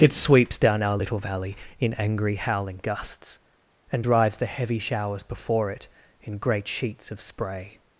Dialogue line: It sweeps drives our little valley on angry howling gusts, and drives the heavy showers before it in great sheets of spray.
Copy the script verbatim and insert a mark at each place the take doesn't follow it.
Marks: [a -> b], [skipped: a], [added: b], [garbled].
It sweeps [drives -> down] our little valley [on -> in] angry howling gusts, and drives the heavy showers before it in great sheets of spray.